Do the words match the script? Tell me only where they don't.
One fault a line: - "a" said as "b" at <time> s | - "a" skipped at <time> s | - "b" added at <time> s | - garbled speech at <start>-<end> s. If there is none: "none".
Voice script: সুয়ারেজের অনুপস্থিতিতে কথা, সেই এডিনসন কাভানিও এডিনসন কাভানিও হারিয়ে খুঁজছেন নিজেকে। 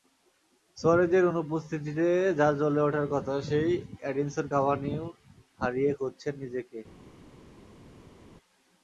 - "যাঁর জ্বলে ওঠার" added at 2.4 s
- "এডিনসন কাভানিও" skipped at 5.0 s